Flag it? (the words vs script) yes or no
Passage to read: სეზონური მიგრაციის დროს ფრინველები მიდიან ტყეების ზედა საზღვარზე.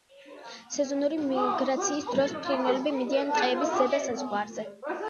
no